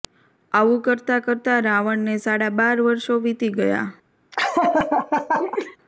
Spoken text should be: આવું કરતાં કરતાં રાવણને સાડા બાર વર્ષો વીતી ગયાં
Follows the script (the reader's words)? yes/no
yes